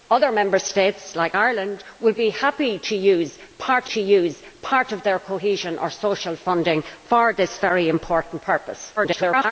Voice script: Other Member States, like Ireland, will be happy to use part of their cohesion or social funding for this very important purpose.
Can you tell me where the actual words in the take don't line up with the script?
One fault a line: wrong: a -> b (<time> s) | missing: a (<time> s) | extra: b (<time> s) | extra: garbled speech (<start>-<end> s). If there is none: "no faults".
extra: to use part (3.8 s)
extra: garbled speech (9.0-9.5 s)